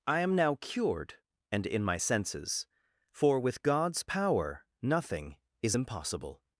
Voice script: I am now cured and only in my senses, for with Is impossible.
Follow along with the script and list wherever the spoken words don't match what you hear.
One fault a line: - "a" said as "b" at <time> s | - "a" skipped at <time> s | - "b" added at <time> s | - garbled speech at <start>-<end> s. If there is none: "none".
- "only" skipped at 1.6 s
- "God's power nothing" added at 3.6 s